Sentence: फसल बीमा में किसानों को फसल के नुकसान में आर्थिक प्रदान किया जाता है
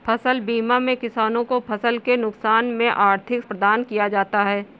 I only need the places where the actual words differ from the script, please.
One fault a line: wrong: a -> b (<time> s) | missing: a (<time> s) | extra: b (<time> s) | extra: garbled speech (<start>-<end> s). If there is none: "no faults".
no faults